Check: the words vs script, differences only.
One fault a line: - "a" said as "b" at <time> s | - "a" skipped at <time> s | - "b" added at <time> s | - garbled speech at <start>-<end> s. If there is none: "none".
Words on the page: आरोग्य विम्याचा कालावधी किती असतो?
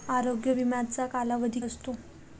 - "किती" skipped at 1.6 s